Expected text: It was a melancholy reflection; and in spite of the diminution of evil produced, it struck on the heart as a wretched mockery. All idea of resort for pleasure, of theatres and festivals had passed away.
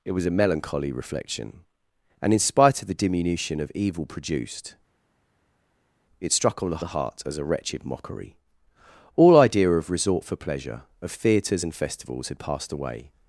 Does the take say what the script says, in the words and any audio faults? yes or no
no